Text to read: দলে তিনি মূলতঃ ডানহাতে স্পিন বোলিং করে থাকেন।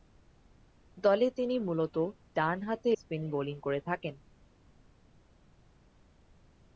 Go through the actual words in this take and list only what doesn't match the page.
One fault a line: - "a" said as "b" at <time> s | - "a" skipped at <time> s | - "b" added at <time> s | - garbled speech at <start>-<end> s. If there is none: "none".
none